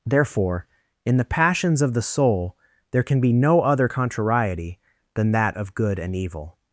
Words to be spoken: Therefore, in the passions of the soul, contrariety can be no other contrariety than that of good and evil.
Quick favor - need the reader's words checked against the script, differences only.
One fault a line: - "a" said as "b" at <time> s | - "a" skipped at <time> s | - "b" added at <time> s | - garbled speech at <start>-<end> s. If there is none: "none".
- "contrariety" said as "there" at 2.9 s